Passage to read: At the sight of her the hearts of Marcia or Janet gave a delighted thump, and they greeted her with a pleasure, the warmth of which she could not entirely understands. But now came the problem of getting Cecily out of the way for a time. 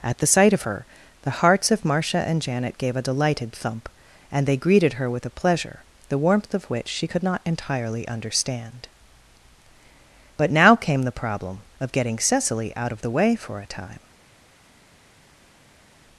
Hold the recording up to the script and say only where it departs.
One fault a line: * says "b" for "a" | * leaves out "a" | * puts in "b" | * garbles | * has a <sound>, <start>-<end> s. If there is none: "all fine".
* says "and" for "or"
* says "understand" for "understands"